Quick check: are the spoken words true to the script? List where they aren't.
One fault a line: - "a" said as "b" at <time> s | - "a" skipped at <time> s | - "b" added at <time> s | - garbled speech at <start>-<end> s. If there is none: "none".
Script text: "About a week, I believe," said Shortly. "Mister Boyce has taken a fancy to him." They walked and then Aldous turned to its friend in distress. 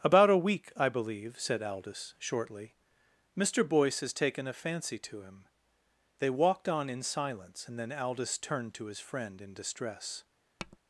- "Aldous" added at 1.6 s
- "on in silence" added at 6.7 s
- "its" said as "his" at 8.8 s